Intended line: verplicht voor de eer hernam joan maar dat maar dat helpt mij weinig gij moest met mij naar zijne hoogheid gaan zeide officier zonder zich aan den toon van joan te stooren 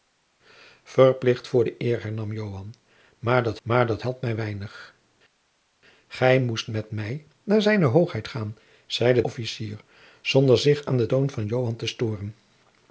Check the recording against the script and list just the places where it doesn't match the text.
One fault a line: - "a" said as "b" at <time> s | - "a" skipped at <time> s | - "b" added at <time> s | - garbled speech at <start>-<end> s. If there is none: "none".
none